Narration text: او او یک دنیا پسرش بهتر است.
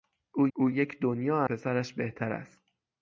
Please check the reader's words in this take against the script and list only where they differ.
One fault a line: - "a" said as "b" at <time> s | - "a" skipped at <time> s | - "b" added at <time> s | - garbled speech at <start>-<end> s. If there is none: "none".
none